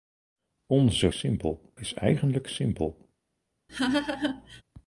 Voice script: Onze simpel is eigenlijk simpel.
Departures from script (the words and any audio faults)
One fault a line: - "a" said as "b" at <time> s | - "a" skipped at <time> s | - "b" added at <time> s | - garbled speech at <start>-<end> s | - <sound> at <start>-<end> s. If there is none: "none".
- laugh at 3.7-4.6 s